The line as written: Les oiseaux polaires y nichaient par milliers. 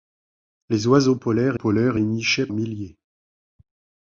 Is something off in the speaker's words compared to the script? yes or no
yes